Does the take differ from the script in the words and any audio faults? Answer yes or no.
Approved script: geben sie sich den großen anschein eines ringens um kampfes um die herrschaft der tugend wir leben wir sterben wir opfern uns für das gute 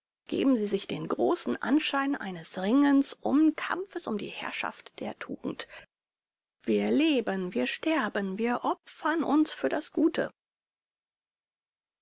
no